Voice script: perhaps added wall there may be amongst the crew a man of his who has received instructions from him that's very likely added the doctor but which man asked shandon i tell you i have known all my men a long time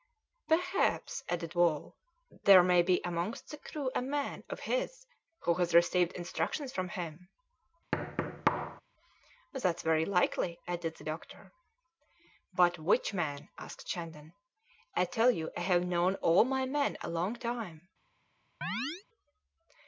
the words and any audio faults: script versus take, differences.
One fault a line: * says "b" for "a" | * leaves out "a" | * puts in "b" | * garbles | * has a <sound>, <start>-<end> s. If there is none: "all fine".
* has a thud, 7.9-8.8 s
* has a chirp, 18.6-19.0 s